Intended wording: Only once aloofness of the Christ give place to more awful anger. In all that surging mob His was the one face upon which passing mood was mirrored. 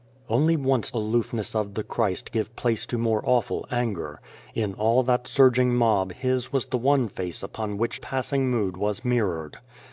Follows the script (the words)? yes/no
yes